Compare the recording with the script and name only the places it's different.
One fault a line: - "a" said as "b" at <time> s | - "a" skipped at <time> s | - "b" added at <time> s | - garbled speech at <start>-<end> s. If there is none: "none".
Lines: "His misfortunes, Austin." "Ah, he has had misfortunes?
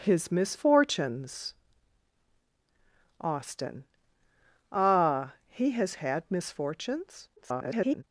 - garbled speech at 7.4-8.0 s